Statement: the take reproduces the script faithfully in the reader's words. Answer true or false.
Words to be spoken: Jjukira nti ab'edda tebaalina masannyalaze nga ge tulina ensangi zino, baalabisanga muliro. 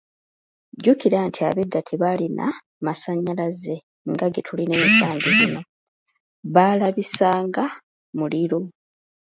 true